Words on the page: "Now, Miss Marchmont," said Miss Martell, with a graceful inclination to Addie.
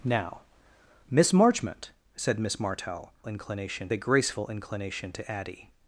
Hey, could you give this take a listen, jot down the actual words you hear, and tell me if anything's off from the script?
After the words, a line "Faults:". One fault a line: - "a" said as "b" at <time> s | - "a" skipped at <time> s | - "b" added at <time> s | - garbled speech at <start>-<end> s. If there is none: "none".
"Now, Miss Marchmont," said Miss Martell, inclination a graceful inclination to Addie.
Faults:
- "with" said as "inclination" at 3.3 s